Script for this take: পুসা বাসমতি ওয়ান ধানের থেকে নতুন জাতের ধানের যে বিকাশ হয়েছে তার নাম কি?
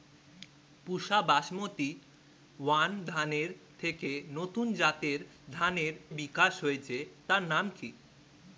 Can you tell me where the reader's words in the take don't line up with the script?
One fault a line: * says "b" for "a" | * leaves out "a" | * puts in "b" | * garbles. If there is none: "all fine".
* leaves out "যে"